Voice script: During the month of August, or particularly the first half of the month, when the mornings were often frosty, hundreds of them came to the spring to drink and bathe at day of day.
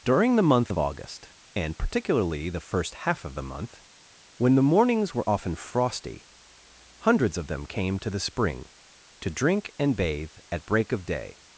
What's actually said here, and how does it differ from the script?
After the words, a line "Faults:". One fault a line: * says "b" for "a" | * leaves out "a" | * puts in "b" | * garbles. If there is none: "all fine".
During the month of August, and particularly the first half of the month, when the mornings were often frosty, hundreds of them came to the spring to drink and bathe at break of day.
Faults:
* says "and" for "or"
* says "break" for "day"